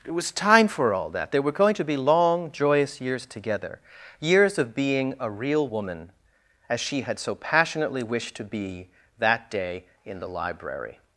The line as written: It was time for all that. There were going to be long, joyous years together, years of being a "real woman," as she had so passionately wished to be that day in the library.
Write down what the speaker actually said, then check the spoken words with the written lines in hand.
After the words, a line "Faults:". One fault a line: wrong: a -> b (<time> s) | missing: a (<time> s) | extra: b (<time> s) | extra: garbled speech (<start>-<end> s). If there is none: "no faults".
It was time for all that. There were going to be long, joyous years together, years of being a "real woman," as she had so passionately wished to be that day in the library.
Faults:
no faults